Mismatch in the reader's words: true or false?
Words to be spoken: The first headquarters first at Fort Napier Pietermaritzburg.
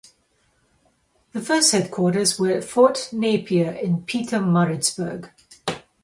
true